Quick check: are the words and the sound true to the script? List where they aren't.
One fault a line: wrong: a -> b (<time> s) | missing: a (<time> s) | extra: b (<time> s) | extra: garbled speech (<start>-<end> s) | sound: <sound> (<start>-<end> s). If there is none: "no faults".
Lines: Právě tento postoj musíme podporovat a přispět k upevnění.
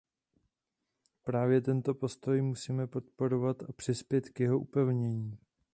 extra: jeho (4.4 s)